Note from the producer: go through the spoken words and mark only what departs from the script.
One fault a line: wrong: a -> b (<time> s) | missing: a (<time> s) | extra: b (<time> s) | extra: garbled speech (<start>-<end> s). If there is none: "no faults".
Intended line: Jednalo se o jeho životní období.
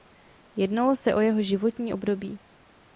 no faults